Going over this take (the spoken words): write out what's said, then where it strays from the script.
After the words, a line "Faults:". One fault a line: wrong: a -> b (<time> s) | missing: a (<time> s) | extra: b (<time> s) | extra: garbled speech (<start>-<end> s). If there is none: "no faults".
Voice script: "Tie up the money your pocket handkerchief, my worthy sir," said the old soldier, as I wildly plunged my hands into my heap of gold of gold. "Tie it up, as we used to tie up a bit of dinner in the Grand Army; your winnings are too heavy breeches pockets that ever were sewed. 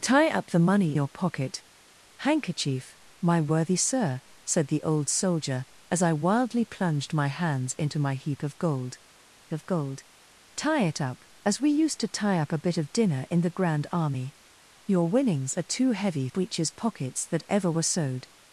"Tie up the money your pocket handkerchief, my worthy sir," said the old soldier, as I wildly plunged my hands into my heap of gold of gold. "Tie it up, as we used to tie up a bit of dinner in the Grand Army; your winnings are too heavy breeches pockets that ever were sewed.
Faults:
no faults